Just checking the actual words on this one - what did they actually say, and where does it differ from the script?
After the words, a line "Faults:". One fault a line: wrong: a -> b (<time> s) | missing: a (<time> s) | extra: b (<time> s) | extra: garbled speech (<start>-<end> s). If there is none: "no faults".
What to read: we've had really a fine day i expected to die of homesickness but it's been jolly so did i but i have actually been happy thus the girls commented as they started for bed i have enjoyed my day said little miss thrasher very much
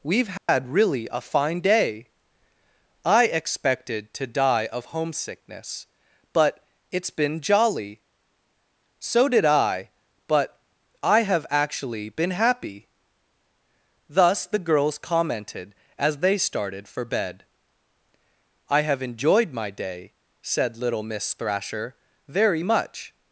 we've had really a fine day i expected to die of homesickness but it's been jolly so did i but i have actually been happy thus the girls commented as they started for bed i have enjoyed my day said little miss thrasher very much
Faults:
no faults